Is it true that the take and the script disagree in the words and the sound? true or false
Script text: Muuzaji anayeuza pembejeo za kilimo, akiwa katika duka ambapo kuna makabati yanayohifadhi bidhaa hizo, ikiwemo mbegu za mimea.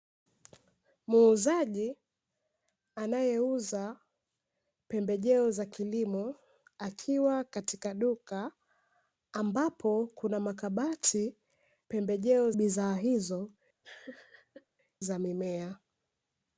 true